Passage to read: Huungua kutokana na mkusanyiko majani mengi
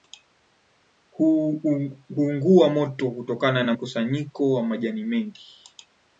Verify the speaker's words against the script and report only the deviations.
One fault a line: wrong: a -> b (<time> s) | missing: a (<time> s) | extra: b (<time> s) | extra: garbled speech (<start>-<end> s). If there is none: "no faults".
extra: moto (2.7 s)
extra: wa (4.5 s)